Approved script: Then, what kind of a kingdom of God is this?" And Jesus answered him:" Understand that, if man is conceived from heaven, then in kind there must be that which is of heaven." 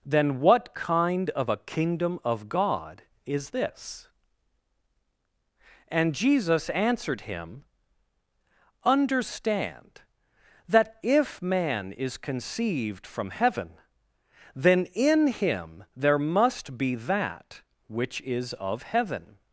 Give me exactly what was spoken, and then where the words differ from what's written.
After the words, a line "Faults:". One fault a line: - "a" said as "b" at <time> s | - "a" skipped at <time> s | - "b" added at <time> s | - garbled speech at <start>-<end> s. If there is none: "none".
Then, what kind of a kingdom of God is this?" And Jesus answered him:" Understand that, if man is conceived from heaven, then in him there must be that which is of heaven."
Faults:
- "kind" said as "him" at 15.3 s